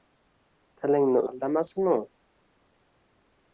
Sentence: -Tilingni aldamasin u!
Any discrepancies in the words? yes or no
no